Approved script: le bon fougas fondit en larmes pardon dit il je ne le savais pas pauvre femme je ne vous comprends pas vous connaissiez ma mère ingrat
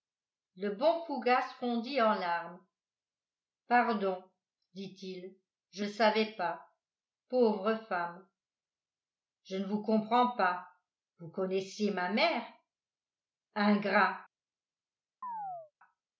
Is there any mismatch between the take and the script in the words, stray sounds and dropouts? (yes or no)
yes